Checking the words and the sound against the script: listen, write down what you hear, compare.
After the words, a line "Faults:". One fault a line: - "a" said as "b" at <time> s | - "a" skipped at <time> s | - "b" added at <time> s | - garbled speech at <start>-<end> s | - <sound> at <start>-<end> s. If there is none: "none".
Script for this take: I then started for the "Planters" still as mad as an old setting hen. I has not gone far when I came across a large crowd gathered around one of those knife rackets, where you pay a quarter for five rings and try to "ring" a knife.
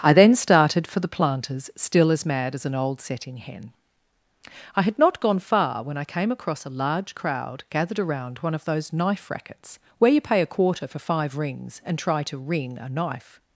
I then started for the "Planters" still as mad as an old setting hen. I had not gone far when I came across a large crowd gathered around one of those knife rackets, where you pay a quarter for five rings and try to "ring" a knife.
Faults:
- "has" said as "had" at 4.8 s